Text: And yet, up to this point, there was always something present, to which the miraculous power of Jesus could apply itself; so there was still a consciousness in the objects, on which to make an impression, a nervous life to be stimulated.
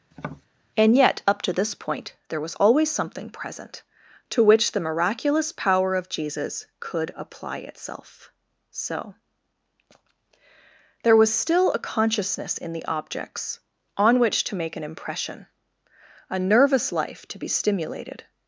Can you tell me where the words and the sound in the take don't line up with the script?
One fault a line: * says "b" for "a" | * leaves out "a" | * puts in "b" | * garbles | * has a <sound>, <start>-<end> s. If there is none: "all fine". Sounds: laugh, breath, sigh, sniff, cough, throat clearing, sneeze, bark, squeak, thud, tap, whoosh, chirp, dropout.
* has a tap, 0.1-0.5 s